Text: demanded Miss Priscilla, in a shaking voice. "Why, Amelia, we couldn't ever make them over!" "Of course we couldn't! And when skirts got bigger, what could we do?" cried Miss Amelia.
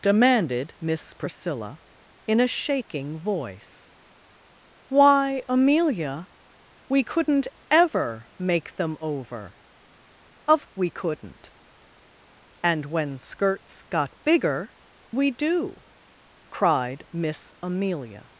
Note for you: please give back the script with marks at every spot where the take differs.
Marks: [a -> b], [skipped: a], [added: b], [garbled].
demanded Miss Priscilla, in a shaking voice. "Why, Amelia, we couldn't ever make them over!" "Of [skipped: course] we couldn't! And when skirts got bigger, [skipped: what could] we do?" cried Miss Amelia.